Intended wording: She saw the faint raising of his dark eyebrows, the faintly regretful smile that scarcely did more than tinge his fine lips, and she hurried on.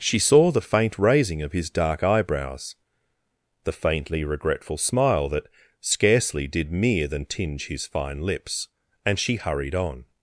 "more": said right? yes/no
no